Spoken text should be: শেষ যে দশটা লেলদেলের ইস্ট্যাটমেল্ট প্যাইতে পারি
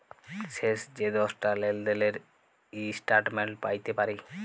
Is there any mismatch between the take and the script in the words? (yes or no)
no